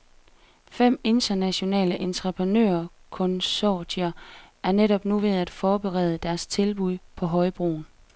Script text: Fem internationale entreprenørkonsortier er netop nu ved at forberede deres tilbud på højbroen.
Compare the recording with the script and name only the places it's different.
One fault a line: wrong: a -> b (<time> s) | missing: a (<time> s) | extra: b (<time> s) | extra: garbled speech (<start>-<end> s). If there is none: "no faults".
no faults